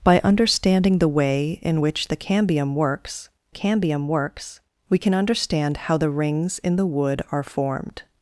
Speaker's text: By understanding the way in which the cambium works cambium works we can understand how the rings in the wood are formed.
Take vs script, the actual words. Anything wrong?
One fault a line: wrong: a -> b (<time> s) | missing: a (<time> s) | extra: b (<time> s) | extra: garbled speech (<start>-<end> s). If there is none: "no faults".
no faults